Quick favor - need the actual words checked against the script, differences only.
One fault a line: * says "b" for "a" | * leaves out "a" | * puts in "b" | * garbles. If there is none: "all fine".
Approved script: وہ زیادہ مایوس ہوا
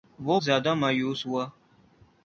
all fine